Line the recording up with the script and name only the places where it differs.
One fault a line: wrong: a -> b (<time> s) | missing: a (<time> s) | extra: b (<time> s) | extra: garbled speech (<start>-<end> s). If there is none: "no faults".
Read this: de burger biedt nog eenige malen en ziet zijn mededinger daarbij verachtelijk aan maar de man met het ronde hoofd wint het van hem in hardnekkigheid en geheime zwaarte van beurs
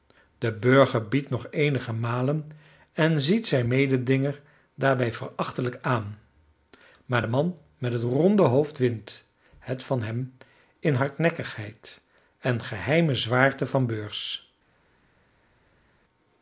no faults